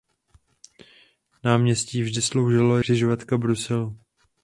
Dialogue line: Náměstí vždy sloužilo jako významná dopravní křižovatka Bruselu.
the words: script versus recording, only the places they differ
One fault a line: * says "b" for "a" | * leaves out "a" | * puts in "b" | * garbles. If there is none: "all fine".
* leaves out "jako významná dopravní"